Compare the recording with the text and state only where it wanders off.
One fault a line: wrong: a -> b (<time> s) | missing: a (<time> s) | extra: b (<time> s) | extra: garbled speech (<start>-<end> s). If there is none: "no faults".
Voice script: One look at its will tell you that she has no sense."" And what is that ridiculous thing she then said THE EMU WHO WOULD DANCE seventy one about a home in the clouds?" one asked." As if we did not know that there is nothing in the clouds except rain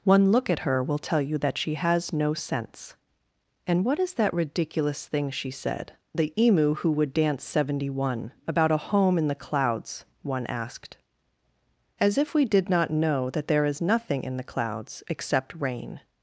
wrong: its -> her (0.7 s)
missing: then (5.5 s)